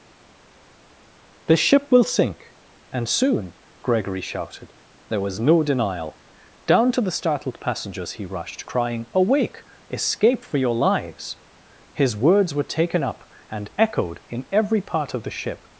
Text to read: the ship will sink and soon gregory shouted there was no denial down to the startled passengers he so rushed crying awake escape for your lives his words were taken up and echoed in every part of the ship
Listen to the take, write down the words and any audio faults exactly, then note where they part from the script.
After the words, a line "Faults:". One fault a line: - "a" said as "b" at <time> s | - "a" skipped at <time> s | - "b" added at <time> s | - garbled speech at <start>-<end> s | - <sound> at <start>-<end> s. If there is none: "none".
the ship will sink and soon gregory shouted there was no denial down to the startled passengers he rushed crying awake escape for your lives his words were taken up and echoed in every part of the ship
Faults:
- "so" skipped at 8.2 s